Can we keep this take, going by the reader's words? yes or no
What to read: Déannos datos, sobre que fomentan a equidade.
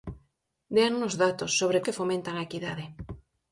yes